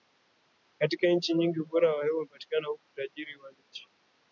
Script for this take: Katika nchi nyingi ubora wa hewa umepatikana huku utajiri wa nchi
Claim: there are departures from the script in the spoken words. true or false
false